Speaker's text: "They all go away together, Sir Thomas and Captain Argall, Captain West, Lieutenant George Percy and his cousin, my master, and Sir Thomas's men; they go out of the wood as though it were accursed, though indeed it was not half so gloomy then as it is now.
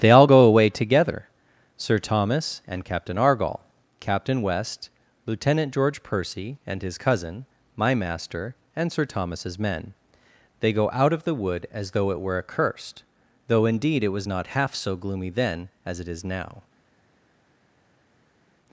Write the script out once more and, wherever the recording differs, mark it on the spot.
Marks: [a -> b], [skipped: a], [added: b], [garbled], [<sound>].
"They all go away together, Sir Thomas and Captain Argall, Captain West, Lieutenant George Percy and his cousin, my master, and Sir Thomas's men; they go out of the wood as though it were accursed, though indeed it was not half so gloomy then as it is now.